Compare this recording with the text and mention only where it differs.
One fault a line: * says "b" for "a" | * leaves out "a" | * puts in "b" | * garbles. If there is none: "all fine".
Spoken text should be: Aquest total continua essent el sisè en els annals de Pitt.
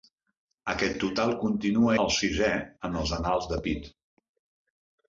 * leaves out "essent"